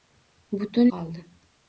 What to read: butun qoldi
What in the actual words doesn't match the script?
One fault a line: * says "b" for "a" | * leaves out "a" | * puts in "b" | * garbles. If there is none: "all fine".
all fine